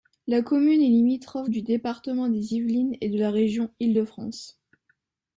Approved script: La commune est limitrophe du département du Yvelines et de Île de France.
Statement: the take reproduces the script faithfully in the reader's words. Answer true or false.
false